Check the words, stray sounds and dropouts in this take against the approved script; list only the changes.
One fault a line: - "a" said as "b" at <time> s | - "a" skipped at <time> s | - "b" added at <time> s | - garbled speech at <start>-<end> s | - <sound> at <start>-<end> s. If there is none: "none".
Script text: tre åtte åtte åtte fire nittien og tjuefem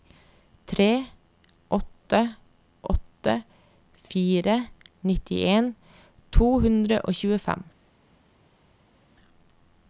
- "åtte" skipped at 3.3 s
- "to hundre" added at 6.4 s